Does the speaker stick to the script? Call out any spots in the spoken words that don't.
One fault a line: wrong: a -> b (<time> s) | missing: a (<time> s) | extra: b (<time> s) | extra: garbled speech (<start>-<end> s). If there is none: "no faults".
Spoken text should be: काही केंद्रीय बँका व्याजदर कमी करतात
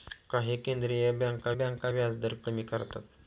extra: बँका (1.5 s)